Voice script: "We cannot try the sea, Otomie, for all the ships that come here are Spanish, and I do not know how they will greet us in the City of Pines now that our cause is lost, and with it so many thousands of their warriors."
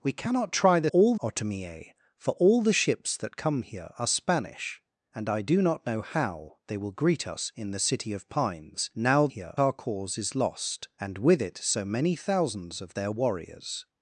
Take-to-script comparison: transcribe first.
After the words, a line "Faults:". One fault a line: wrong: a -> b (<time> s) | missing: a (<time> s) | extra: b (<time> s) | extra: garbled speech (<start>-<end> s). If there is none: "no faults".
"We cannot try the all, Otomie, for all the ships that come here are Spanish, and I do not know how they will greet us in the City of Pines now here our cause is lost, and with it so many thousands of their warriors."
Faults:
wrong: sea -> all (0.9 s)
wrong: that -> here (9.3 s)